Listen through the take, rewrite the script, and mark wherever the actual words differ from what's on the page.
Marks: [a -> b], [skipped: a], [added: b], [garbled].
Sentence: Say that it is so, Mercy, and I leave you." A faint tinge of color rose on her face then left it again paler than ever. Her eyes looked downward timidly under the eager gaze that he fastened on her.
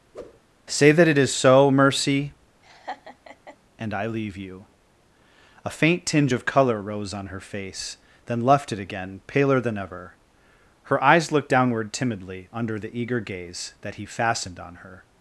Say that it is so, Mercy, and I leave you." A faint tinge of color rose on her face then left it again paler than ever. Her eyes looked downward timidly under the eager gaze that he fastened on her.